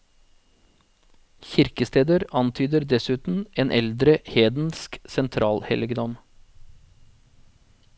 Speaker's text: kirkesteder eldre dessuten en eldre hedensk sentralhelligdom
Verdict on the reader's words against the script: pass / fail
fail